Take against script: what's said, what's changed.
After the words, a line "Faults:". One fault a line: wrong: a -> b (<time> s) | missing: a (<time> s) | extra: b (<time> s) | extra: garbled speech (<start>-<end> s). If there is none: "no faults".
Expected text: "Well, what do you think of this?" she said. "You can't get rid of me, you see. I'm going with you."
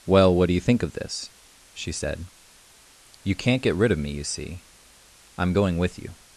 "Well, what do you think of this?" she said. "You can't get rid of me, you see. I'm going with you."
Faults:
no faults